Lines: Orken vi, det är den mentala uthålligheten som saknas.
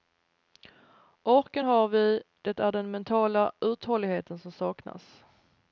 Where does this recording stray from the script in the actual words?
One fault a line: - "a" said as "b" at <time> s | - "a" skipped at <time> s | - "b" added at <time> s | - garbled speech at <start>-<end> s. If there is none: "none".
- "har" added at 1.6 s